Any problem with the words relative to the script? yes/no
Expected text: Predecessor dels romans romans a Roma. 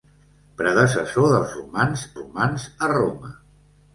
no